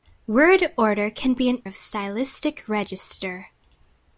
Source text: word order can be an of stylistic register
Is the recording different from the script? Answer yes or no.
no